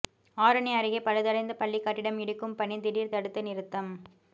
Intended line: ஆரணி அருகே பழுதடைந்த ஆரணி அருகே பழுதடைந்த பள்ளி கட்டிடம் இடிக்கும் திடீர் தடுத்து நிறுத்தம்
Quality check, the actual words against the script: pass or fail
fail